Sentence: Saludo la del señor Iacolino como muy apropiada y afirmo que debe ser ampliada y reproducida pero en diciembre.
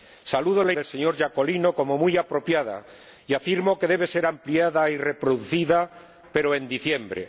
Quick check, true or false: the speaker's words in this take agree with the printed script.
true